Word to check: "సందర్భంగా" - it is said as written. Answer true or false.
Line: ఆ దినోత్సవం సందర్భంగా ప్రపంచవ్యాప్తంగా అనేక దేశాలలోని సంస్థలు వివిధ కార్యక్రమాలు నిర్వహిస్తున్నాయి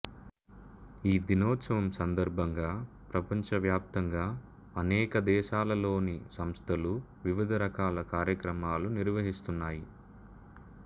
true